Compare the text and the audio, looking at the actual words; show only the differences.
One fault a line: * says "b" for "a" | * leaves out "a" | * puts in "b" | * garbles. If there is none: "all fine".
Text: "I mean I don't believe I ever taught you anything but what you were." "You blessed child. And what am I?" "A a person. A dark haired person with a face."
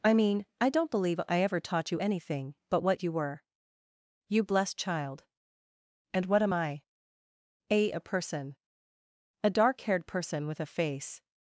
all fine